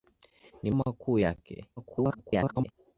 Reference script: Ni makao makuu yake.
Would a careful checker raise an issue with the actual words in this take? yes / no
yes